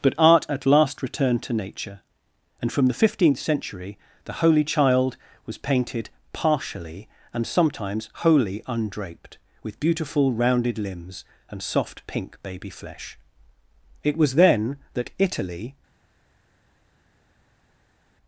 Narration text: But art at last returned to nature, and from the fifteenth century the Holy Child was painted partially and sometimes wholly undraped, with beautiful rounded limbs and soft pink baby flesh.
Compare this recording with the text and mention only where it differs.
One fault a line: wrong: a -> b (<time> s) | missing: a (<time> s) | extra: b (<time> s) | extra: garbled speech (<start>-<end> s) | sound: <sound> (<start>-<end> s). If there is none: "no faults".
extra: It was then that Italy (14.0 s)